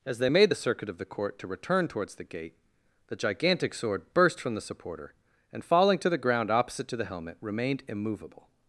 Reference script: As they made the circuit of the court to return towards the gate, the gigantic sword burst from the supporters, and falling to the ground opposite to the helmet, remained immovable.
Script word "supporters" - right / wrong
wrong